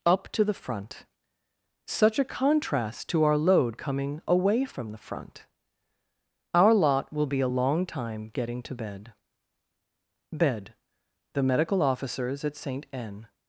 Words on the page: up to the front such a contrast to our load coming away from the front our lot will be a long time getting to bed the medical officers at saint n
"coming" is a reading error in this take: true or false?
false